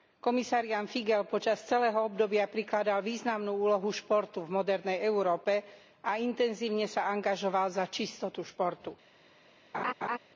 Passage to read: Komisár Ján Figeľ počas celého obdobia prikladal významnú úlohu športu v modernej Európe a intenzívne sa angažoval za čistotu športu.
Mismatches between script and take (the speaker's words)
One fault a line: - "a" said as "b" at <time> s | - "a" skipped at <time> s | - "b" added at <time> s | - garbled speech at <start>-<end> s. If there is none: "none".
none